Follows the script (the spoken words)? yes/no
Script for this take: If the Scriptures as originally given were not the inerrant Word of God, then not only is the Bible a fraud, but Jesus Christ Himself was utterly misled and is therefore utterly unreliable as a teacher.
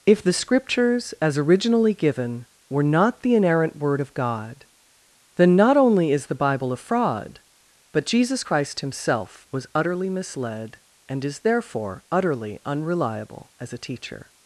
yes